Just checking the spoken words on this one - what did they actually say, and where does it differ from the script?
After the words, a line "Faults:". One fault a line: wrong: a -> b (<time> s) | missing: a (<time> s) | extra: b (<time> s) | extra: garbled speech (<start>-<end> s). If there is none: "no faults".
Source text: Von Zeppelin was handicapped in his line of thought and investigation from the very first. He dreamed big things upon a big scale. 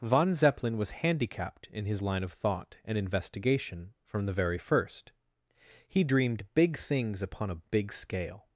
Von Zeppelin was handicapped in his line of thought and investigation from the very first. He dreamed big things upon a big scale.
Faults:
no faults